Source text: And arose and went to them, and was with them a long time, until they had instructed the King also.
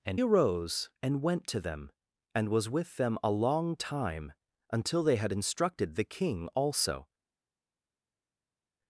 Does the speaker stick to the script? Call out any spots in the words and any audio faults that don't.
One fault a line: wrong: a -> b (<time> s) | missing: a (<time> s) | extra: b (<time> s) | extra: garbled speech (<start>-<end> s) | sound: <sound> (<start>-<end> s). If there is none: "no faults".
no faults